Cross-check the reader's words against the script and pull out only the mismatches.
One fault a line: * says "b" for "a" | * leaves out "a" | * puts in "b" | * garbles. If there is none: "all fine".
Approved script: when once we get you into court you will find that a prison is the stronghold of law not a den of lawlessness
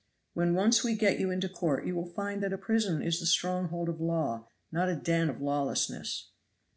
all fine